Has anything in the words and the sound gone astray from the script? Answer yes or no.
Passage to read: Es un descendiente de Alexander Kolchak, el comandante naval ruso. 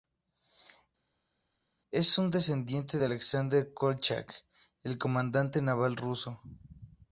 no